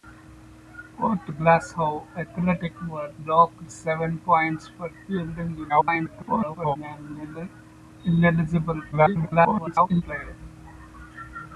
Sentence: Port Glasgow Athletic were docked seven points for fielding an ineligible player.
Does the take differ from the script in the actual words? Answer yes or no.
yes